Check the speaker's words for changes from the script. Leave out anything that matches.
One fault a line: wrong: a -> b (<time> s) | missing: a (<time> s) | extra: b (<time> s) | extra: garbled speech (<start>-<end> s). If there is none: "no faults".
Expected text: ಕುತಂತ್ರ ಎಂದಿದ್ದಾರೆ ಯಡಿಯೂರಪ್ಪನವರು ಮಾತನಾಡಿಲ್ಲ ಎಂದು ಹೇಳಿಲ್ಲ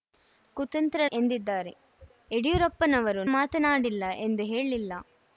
no faults